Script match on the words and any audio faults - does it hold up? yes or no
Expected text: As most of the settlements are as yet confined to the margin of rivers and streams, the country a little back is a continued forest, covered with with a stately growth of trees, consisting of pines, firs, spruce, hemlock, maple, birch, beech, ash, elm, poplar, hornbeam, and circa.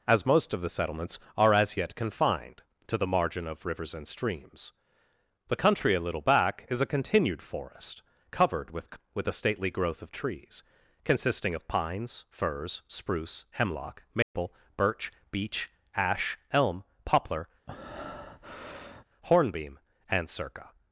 no